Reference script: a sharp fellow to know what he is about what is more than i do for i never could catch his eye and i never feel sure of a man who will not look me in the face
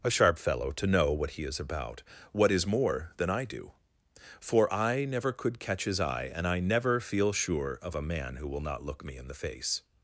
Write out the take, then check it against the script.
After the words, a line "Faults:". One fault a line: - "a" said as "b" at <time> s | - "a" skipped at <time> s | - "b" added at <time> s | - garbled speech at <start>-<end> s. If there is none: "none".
a sharp fellow to know what he is about what is more than i do for i never could catch his eye and i never feel sure of a man who will not look me in the face
Faults:
none